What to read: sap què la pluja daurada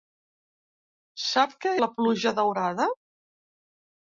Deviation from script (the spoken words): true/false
false